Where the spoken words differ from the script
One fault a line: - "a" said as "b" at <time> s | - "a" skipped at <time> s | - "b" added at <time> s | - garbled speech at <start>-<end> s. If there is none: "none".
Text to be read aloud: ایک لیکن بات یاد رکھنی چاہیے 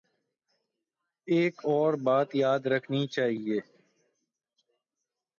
- "لیکن" said as "اور" at 1.7 s